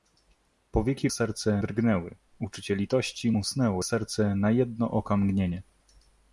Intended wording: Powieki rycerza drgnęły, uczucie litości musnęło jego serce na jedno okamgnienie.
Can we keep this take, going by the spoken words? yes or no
no